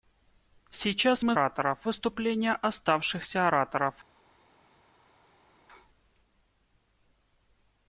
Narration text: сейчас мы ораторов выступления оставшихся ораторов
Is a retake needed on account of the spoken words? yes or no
no